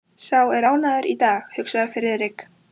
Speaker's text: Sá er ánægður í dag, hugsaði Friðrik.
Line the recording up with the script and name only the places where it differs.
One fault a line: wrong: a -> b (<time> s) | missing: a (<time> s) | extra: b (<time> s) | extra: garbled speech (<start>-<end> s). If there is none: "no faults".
no faults